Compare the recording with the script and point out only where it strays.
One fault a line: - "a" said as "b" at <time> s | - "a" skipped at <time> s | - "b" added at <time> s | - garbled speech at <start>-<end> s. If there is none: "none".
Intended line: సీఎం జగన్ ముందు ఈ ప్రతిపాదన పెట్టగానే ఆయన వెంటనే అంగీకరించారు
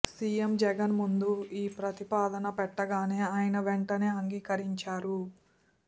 none